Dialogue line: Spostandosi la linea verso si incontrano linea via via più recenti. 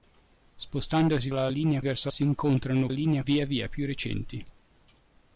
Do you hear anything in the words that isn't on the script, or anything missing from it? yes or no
no